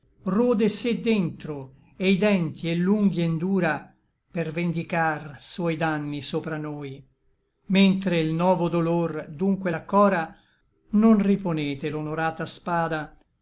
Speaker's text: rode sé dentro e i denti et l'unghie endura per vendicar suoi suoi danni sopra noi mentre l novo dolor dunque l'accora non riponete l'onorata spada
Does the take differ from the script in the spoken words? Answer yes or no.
yes